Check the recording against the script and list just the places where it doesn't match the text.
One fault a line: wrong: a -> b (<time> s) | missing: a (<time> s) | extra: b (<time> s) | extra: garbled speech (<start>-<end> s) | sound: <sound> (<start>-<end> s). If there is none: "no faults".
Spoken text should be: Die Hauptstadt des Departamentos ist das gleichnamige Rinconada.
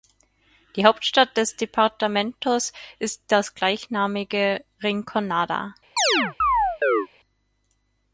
sound: chirp (6.0-7.1 s)